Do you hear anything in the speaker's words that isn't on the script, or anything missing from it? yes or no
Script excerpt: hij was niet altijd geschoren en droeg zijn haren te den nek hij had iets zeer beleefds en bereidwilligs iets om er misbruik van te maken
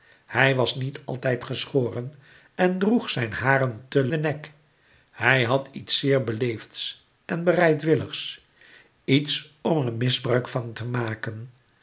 no